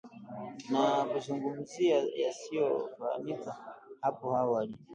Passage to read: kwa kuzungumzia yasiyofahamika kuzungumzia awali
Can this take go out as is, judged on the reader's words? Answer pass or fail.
fail